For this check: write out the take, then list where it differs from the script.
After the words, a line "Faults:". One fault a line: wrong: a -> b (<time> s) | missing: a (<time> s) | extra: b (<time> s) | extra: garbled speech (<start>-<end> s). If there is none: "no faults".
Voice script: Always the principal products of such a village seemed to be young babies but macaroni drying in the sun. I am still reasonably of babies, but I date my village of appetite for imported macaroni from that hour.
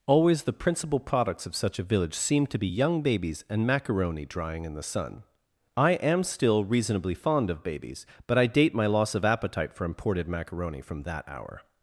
Always the principal products of such a village seemed to be young babies and macaroni drying in the sun. I am still reasonably fond of babies, but I date my loss of appetite for imported macaroni from that hour.
Faults:
wrong: but -> and (3.5 s)
extra: fond (7.1 s)
wrong: village -> loss (8.9 s)